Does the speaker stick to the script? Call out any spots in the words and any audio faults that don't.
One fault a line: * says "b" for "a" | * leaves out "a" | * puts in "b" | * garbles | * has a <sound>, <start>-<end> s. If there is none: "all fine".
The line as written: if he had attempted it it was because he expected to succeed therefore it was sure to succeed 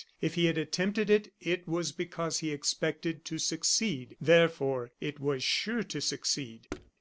* has a thud, 6.7-6.9 s